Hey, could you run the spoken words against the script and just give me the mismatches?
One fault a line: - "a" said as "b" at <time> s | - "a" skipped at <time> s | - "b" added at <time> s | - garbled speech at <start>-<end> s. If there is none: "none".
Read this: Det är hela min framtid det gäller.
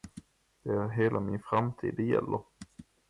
none